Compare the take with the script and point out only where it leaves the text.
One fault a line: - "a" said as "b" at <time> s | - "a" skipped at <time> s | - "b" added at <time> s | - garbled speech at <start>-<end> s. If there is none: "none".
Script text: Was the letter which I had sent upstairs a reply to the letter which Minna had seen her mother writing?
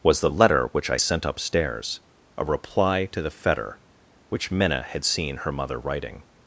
- "had" skipped at 1.0 s
- "letter" said as "fetter" at 3.3 s